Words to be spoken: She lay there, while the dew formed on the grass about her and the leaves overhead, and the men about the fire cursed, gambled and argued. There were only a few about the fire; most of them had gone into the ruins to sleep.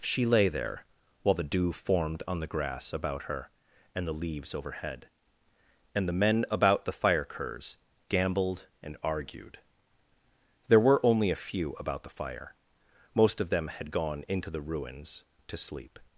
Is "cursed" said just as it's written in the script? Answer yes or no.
no